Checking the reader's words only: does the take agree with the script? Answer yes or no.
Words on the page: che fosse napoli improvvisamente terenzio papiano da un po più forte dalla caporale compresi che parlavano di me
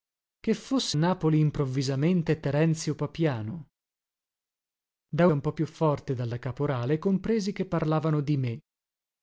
yes